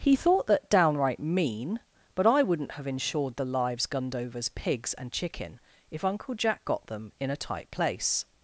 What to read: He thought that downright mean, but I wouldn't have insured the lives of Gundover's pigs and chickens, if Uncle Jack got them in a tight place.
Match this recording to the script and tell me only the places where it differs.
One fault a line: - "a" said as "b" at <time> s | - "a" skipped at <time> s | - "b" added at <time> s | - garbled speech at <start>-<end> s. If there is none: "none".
- "of" skipped at 3.9 s
- "chickens" said as "chicken" at 5.1 s